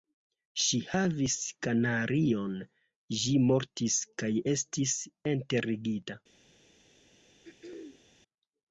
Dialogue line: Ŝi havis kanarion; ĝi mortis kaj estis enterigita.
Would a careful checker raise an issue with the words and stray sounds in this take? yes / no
yes